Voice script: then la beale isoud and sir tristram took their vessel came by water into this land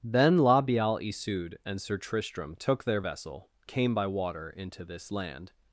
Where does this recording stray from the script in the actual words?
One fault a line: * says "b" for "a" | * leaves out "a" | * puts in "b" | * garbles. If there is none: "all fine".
all fine